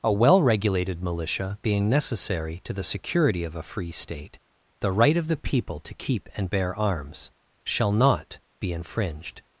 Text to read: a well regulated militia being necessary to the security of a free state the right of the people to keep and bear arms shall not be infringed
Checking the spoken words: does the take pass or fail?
pass